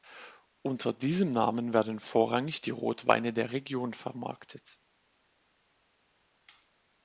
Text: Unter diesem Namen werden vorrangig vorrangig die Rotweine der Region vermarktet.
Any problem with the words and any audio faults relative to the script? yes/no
yes